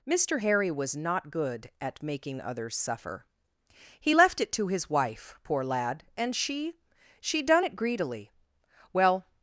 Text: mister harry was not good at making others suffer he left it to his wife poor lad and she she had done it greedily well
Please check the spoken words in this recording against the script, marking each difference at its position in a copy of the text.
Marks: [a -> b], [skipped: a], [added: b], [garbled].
mister harry was not good at making others suffer he left it to his wife poor lad and she she [skipped: had] done it greedily well